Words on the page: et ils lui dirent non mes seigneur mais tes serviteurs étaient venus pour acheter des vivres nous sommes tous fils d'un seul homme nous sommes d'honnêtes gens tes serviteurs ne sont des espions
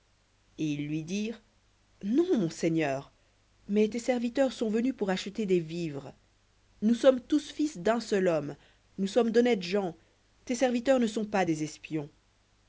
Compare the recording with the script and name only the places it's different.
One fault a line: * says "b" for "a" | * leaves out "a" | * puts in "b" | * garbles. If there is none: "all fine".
* says "mon" for "mes"
* says "sont" for "étaient"
* puts in "pas"